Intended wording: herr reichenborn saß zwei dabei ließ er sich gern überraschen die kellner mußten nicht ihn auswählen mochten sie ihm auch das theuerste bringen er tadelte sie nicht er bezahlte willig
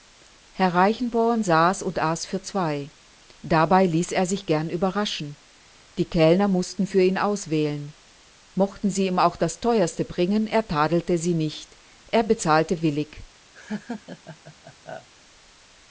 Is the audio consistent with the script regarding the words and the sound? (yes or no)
no